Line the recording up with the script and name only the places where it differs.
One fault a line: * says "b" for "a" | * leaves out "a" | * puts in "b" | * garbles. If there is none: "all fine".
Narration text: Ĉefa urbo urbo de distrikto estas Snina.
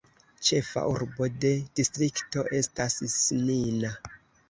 * leaves out "urbo"